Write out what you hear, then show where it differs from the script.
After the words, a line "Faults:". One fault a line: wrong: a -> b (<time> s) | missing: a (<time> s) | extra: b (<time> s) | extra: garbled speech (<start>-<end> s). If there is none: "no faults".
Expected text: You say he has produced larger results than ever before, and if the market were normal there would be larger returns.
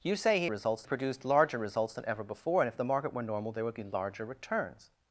You say he results produced larger results than ever before, and if the market were normal there would be larger returns.
Faults:
wrong: has -> results (0.5 s)